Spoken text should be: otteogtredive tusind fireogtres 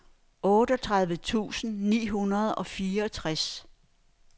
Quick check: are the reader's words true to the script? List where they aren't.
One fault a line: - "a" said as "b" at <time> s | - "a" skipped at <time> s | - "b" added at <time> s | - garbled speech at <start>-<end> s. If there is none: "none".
- "ni hundrede og" added at 1.9 s